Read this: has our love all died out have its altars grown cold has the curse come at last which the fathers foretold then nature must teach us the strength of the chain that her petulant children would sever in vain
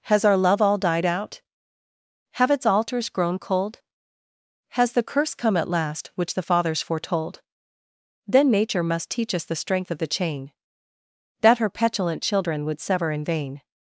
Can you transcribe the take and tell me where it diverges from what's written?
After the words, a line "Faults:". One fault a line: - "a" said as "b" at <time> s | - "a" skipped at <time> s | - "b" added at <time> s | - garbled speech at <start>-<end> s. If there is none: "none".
has our love all died out have its altars grown cold has the curse come at last which the fathers foretold then nature must teach us the strength of the chain that her petulant children would sever in vain
Faults:
none